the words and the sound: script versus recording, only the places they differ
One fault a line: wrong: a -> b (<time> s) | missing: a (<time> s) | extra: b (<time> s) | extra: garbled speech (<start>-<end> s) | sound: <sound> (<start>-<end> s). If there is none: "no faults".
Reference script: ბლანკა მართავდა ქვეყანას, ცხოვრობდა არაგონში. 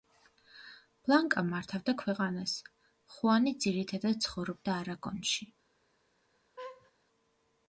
extra: ხუანი ძირითადად (3.2 s)
sound: laugh (6.6-6.9 s)